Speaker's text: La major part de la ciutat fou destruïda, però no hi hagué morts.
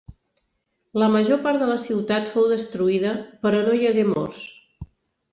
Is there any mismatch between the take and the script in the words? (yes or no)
no